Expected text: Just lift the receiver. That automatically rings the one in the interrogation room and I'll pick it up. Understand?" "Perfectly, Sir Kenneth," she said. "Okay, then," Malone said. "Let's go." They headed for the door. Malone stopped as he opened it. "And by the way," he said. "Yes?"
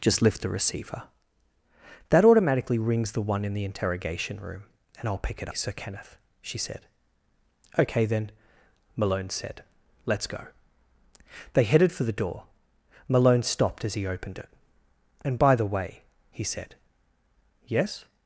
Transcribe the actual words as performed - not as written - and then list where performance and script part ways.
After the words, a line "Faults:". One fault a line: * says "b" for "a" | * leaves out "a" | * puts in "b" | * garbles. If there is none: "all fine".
Just lift the receiver. That automatically rings the one in the interrogation room and I'll pick it Sir Kenneth," she said. "Okay, then," Malone said. "Let's go." They headed for the door. Malone stopped as he opened it. "And by the way," he said. "Yes?"
Faults:
* leaves out "up Understand Perfectly"